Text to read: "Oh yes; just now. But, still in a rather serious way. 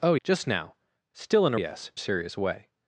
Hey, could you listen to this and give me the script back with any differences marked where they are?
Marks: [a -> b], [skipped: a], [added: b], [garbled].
"Oh [skipped: yes;] just now. [skipped: But,] still in a [rather -> yes] serious way.